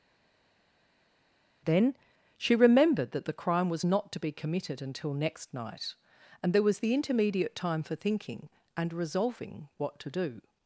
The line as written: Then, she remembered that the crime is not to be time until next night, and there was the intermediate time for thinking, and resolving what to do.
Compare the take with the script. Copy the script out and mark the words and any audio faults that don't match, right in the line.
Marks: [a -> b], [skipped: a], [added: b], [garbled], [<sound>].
Then, she remembered that the crime [is -> was] not to be [time -> committed] until next night, and there was the intermediate time for thinking, and resolving what to do.